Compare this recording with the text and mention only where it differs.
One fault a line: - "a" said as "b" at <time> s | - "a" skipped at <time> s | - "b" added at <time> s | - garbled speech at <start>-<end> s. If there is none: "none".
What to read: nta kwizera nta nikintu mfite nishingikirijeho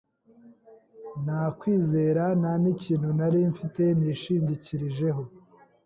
- "nari" added at 3.2 s